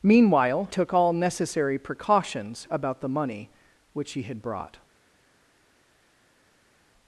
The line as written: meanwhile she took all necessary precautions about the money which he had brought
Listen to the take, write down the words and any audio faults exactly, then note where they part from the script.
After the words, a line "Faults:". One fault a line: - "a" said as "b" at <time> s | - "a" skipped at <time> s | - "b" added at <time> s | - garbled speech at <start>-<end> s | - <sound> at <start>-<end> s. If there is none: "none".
meanwhile took all necessary precautions about the money which he had brought
Faults:
- "she" skipped at 0.7 s